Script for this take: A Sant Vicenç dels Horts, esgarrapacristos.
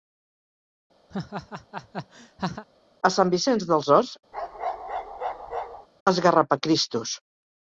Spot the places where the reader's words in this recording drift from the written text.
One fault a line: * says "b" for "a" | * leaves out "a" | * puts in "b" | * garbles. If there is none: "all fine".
all fine